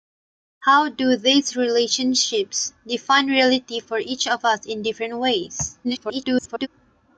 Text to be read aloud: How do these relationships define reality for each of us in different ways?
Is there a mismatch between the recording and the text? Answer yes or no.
yes